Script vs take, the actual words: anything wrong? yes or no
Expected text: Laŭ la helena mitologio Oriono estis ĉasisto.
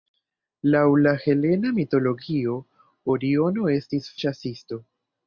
no